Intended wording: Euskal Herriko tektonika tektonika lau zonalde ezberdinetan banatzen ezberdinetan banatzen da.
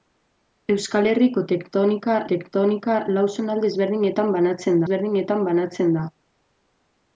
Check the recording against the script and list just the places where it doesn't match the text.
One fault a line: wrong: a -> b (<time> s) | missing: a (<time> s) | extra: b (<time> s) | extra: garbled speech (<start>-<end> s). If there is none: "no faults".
no faults